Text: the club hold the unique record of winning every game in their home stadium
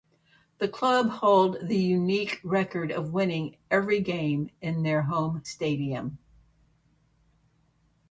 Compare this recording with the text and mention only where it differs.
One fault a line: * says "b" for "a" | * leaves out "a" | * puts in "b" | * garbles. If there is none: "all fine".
all fine